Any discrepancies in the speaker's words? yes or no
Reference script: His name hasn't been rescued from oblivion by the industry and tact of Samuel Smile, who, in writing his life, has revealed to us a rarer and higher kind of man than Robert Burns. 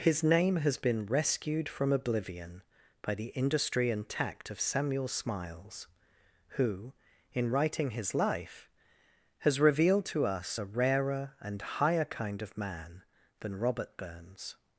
yes